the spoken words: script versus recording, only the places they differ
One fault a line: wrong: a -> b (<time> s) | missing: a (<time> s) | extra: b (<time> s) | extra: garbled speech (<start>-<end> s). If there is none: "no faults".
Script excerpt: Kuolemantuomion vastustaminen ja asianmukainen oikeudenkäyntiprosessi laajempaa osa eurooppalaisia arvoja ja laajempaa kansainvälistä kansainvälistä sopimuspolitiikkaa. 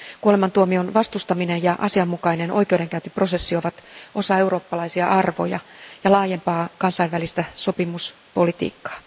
wrong: laajempaa -> ovat (3.5 s)
missing: kansainvälistä (7.4 s)